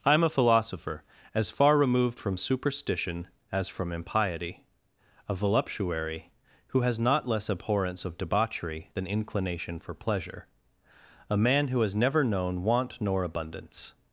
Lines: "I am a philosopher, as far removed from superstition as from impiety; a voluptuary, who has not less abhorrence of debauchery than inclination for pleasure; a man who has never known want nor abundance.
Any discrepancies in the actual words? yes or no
no